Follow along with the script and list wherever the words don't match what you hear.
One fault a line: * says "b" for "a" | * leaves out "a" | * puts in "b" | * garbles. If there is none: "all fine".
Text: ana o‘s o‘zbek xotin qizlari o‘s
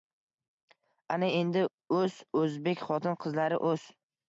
* puts in "endi"